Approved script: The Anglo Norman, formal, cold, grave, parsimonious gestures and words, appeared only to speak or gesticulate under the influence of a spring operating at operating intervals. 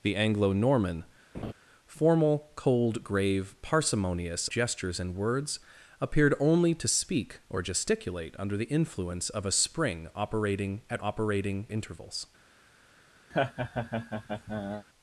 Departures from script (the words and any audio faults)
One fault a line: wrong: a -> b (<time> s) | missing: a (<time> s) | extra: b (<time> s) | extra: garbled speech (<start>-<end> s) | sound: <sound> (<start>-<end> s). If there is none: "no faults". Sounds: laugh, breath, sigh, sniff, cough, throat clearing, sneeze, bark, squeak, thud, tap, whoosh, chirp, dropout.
sound: laugh (1.3-1.5 s)
sound: laugh (13.3-14.9 s)